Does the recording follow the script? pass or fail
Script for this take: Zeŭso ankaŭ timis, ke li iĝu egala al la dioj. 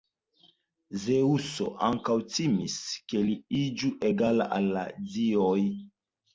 pass